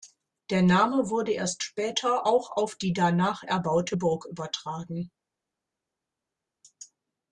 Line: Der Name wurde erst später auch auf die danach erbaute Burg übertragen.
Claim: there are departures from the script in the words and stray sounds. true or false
false